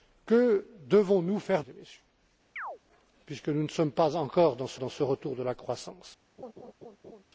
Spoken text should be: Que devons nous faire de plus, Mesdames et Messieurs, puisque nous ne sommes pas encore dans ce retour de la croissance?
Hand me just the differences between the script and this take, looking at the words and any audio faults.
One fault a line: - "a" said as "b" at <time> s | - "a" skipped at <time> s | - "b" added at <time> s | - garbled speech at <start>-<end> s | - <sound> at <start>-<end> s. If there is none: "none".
- "de plus Mesdames" skipped at 1.6 s
- chirp at 2.6-2.8 s
- "dans ce" added at 4.8 s
- laugh at 6.4-7.2 s